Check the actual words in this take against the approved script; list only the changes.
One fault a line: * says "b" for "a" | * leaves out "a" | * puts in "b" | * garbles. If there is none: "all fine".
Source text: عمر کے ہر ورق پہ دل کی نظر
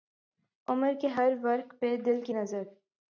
all fine